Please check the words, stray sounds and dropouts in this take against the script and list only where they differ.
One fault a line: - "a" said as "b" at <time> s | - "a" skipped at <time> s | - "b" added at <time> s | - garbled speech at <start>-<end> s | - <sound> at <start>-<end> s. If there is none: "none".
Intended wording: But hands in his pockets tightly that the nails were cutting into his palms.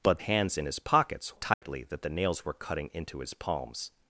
- dropout at 1.5-1.6 s